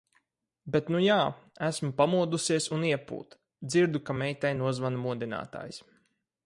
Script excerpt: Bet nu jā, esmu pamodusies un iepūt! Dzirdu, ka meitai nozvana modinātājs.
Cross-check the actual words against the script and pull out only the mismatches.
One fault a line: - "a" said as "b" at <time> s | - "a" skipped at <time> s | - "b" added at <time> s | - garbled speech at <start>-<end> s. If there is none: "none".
none